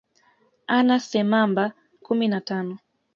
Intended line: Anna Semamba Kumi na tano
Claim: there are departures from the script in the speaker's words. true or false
false